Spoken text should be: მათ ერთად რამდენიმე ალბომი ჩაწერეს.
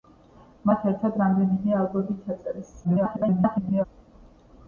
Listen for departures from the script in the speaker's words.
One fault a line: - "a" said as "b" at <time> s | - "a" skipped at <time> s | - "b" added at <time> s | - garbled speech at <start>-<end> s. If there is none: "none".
- garbled speech at 2.8-3.9 s